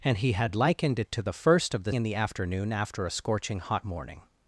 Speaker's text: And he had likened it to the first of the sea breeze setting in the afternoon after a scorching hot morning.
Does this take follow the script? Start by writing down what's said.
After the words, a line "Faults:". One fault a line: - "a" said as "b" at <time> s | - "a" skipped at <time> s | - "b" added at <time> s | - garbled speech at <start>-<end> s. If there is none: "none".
And he had likened it to the first of the in the afternoon after a scorching hot morning.
Faults:
- "sea breeze setting" skipped at 1.9 s